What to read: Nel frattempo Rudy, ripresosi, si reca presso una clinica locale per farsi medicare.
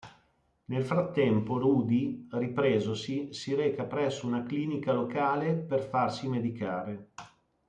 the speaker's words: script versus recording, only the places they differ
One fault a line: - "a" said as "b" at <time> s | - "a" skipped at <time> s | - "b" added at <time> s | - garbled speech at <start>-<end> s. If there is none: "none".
none